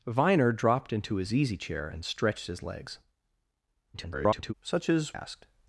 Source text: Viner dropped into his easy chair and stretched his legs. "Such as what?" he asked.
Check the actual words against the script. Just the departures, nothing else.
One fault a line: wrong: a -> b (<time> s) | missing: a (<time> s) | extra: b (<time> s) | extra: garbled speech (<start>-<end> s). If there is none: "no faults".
extra: garbled speech (3.9-4.5 s)
missing: what he (5.2 s)